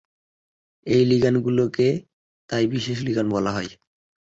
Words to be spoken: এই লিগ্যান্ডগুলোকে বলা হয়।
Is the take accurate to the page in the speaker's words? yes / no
no